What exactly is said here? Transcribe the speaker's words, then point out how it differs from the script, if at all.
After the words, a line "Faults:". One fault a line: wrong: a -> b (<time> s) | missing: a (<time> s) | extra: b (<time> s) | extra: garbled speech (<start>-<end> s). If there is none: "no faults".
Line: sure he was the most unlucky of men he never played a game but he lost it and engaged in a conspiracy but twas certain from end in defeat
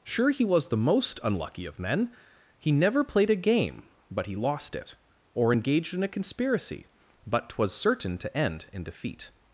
sure he was the most unlucky of men he never played a game but he lost it or engaged in a conspiracy but twas certain to end in defeat
Faults:
wrong: and -> or (5.3 s)
wrong: from -> to (8.2 s)